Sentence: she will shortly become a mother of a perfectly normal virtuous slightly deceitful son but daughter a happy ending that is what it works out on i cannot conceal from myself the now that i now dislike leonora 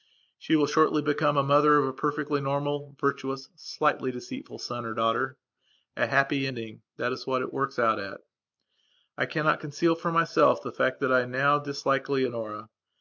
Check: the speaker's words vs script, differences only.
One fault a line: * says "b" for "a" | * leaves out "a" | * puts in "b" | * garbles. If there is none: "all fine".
* says "or" for "but"
* says "at" for "on"
* says "fact" for "now"